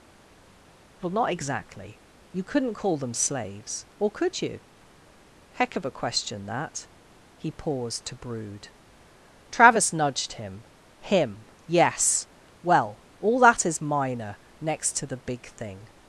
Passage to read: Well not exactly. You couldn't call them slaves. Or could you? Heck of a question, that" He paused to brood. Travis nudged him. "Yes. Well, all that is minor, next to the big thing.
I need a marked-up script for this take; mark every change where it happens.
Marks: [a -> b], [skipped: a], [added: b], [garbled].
Well not exactly. You couldn't call them slaves. Or could you? Heck of a question, that" He paused to brood. Travis nudged him. [added: him] "Yes. Well, all that is minor, next to the big thing.